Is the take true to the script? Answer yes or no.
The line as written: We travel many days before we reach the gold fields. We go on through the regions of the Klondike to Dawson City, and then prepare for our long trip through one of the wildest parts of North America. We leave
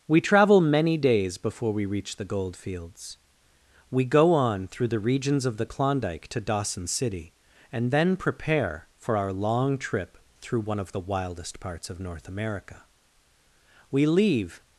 yes